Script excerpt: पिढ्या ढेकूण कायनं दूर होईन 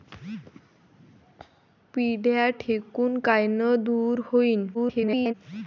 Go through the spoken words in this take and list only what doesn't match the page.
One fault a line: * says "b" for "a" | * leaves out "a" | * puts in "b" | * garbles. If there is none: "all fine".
* garbles